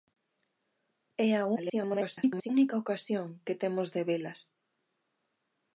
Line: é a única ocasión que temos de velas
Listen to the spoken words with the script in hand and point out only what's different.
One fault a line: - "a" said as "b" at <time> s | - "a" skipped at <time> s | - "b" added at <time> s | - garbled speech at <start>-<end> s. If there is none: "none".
- garbled speech at 1.6-2.5 s